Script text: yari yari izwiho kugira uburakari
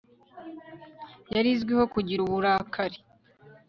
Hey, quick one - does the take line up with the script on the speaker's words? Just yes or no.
no